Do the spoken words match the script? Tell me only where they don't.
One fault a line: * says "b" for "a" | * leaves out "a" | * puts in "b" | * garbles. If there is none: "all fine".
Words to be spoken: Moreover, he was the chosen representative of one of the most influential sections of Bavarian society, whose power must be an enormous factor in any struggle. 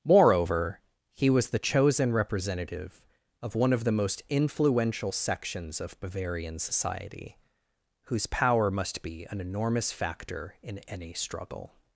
all fine